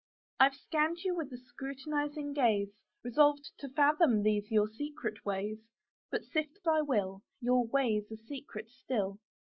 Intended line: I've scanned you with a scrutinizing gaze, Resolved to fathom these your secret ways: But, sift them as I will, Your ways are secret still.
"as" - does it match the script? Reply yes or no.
no